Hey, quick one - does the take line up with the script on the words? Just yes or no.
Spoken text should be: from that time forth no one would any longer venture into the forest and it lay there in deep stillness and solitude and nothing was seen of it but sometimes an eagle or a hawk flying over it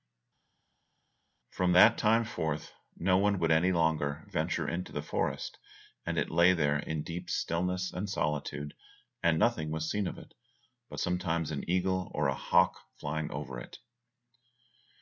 yes